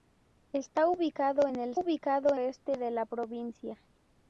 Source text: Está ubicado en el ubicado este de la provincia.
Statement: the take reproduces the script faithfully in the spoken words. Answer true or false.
true